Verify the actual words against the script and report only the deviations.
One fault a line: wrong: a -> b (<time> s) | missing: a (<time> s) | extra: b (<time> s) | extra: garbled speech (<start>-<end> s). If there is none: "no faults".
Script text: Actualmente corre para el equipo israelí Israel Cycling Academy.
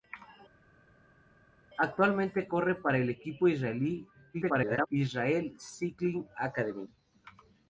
extra: garbled speech (4.3-4.9 s)